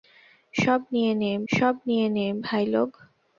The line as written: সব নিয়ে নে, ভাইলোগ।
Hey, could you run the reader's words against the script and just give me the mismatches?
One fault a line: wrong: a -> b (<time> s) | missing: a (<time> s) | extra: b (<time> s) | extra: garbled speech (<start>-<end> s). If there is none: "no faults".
extra: সব নিয়ে নে (1.5 s)